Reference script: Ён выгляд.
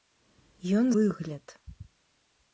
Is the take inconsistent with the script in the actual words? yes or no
no